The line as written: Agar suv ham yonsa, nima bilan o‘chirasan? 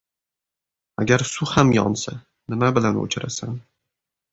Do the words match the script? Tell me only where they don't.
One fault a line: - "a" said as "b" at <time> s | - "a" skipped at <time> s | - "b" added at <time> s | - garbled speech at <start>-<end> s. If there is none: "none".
none